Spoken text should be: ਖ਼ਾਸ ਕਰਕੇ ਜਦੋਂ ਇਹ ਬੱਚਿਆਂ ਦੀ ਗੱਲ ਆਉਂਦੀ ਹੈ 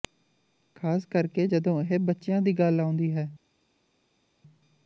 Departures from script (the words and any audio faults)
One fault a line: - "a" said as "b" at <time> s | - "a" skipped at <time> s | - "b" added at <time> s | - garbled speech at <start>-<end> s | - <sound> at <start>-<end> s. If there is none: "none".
none